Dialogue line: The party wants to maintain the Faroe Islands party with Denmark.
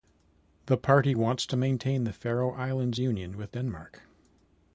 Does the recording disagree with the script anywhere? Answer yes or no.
yes